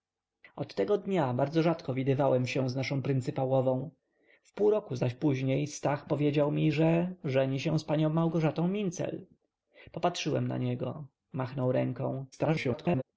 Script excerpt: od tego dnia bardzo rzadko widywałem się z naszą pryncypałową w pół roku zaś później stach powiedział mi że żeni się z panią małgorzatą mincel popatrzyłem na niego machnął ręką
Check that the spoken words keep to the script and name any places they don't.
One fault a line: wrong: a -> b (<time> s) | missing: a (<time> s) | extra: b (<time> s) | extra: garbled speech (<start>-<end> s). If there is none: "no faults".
extra: garbled speech (12.3-13.0 s)